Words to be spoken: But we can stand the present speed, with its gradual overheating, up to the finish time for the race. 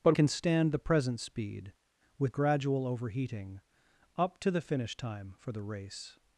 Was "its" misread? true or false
true